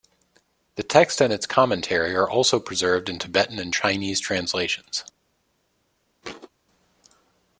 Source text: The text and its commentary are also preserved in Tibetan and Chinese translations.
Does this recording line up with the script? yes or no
yes